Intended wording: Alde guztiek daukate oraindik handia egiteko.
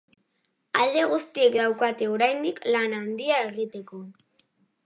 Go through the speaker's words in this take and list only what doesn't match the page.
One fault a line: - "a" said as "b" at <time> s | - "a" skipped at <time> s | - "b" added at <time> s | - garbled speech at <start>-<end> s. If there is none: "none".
- "lan" added at 2.8 s